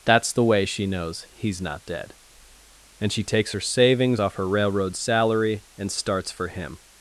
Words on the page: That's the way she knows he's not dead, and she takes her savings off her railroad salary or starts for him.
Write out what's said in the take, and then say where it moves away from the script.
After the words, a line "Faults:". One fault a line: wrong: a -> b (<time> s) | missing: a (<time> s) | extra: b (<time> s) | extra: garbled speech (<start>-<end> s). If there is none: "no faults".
That's the way she knows he's not dead, and she takes her savings off her railroad salary and starts for him.
Faults:
wrong: or -> and (5.8 s)